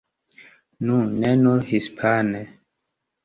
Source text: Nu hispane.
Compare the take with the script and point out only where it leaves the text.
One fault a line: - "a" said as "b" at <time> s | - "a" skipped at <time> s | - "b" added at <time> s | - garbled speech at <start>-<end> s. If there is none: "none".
- "ne nur" added at 1.2 s